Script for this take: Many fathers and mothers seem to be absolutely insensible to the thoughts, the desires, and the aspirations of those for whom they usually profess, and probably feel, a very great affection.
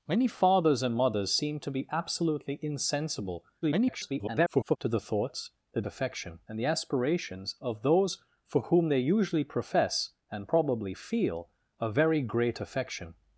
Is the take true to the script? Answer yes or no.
no